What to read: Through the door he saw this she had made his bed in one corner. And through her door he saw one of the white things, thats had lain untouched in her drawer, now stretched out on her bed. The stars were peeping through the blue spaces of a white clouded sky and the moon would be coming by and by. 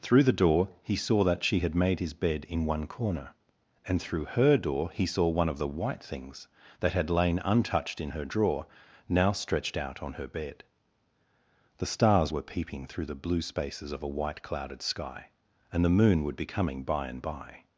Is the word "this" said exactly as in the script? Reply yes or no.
no